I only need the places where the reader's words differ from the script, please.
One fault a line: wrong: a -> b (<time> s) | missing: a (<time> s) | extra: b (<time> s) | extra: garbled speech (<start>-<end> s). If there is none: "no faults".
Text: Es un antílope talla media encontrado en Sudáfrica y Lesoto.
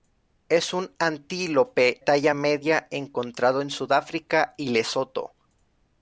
no faults